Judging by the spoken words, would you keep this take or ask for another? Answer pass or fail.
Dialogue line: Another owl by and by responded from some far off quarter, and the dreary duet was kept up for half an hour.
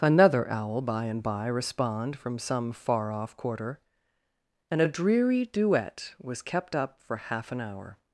fail